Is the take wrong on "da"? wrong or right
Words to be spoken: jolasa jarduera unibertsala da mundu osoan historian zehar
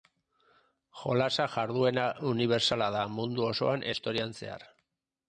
right